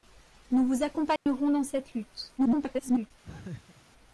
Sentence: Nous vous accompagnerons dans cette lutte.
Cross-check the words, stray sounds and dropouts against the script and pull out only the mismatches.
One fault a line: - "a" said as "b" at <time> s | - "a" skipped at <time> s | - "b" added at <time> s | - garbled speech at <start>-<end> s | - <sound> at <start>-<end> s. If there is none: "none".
- dropout at 1.2-1.3 s
- garbled speech at 2.4-3.1 s
- laugh at 3.2-3.8 s